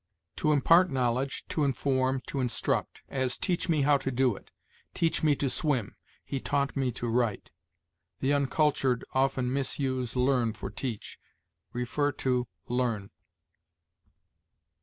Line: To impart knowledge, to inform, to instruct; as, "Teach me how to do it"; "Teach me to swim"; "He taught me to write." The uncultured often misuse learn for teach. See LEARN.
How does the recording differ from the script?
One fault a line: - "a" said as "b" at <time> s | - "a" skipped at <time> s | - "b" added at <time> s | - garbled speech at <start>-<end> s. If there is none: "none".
none